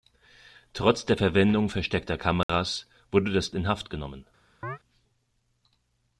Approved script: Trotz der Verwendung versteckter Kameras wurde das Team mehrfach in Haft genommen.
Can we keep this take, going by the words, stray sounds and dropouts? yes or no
no